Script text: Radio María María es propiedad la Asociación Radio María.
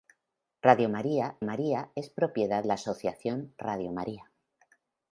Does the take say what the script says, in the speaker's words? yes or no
yes